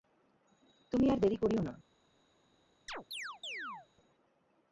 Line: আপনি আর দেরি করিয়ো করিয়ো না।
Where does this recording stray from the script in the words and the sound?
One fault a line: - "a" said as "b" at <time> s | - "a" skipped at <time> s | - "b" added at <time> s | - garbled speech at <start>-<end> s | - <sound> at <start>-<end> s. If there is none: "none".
- "আপনি" said as "তুমি" at 0.9 s
- "করিয়ো" skipped at 1.6 s
- chirp at 2.9-3.9 s